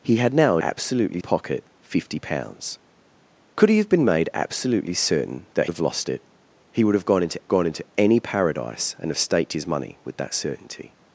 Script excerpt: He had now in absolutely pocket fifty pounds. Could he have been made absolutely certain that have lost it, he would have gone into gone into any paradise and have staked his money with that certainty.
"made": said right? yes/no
yes